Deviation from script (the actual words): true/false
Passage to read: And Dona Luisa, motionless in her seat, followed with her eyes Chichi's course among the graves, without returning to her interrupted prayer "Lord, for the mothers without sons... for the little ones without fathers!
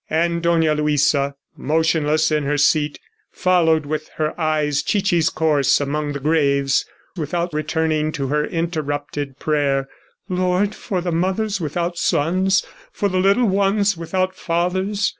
false